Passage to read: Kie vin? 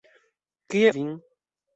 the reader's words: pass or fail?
pass